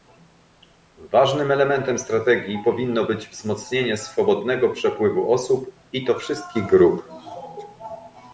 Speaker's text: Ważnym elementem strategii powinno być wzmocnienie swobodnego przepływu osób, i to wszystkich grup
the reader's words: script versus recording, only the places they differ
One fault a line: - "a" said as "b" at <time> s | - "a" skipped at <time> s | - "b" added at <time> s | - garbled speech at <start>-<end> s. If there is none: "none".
none